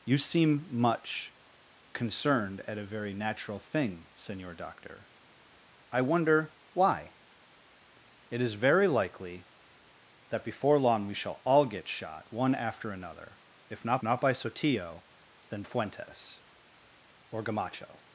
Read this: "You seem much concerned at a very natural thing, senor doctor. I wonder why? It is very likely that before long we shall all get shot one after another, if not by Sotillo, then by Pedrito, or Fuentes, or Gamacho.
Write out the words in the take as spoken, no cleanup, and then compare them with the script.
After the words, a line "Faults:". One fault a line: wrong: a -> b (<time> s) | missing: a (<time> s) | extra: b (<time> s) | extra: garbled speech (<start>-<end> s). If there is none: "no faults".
"You seem much concerned at a very natural thing, senor doctor. I wonder why? It is very likely that before long we shall all get shot one after another, if not not by Sotillo, then Fuentes, or Gamacho.
Faults:
extra: not (14.0 s)
missing: by Pedrito or (15.6 s)